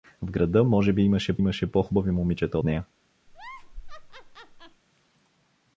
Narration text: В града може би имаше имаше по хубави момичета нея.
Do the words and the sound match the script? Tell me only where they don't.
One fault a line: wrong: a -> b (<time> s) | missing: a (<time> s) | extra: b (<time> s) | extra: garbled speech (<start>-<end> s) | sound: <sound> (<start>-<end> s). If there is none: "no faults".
sound: laugh (3.3-4.8 s)